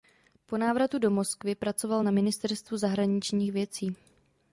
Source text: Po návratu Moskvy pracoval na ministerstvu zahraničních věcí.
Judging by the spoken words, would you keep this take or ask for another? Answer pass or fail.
fail